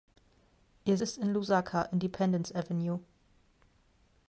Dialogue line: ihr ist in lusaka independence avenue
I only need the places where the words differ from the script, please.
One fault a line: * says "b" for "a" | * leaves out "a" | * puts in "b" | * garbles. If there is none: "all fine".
all fine